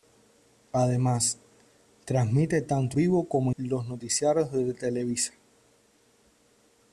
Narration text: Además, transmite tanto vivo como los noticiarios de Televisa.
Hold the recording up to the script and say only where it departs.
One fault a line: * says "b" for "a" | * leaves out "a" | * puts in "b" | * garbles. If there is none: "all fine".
all fine